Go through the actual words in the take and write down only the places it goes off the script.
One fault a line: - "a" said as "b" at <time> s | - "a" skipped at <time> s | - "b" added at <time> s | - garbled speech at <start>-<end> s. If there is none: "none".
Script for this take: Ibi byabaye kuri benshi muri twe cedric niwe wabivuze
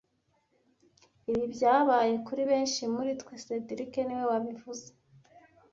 none